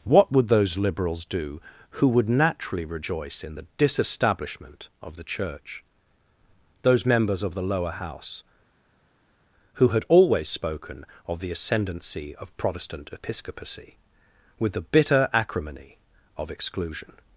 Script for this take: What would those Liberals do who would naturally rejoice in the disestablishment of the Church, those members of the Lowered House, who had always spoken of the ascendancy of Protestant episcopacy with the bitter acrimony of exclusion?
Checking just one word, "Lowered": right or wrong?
wrong